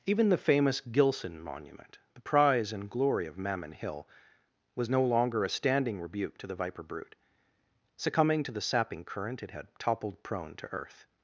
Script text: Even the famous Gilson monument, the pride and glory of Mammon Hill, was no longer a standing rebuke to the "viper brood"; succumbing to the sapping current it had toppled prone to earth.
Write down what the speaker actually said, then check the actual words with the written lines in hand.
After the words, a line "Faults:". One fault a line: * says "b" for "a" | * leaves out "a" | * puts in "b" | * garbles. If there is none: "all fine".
Even the famous Gilson monument, the prize and glory of Mammon Hill, was no longer a standing rebuke to the "viper brood"; succumbing to the sapping current it had toppled prone to earth.
Faults:
* says "prize" for "pride"